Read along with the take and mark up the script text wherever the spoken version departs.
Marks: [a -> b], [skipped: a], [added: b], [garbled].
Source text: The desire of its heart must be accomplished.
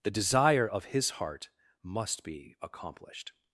The desire of [its -> his] heart must be accomplished.